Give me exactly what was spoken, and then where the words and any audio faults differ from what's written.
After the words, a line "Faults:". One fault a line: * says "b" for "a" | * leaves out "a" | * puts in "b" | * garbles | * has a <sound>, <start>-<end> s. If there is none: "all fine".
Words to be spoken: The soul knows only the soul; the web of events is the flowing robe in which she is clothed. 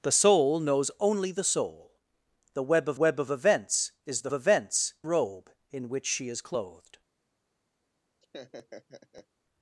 The soul knows only the soul; the web of web of events is the events robe in which she is clothed.
Faults:
* puts in "web of"
* says "events" for "flowing"
* has a laugh, 8.2-9.3 s